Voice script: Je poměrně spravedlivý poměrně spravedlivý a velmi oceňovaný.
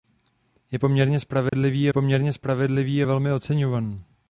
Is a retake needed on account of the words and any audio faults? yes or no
yes